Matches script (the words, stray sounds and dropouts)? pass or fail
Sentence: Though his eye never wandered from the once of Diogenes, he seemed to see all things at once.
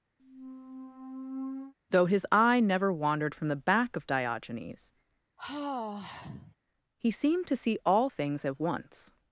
fail